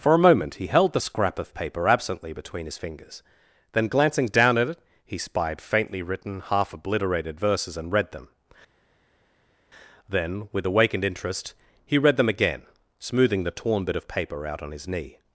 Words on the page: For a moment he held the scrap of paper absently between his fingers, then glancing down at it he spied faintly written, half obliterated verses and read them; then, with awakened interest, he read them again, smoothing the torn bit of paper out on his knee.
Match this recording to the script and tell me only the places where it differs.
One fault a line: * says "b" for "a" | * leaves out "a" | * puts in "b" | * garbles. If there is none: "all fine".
all fine